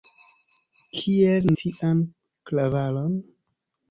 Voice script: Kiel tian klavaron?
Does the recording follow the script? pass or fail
pass